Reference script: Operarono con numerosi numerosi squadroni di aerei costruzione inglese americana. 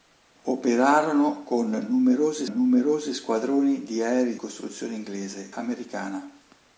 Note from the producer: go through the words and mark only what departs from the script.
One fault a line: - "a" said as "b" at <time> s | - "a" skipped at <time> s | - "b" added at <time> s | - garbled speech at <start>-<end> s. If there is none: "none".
none